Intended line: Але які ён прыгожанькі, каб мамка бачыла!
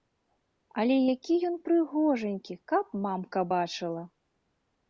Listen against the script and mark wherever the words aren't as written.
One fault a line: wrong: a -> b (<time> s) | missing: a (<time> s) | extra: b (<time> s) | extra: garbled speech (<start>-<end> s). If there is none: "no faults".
no faults